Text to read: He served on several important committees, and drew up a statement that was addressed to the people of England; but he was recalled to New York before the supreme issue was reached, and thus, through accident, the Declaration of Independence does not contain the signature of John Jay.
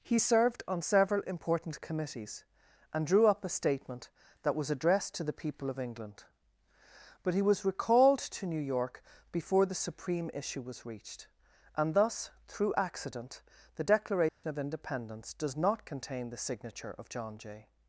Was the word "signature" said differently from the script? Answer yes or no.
no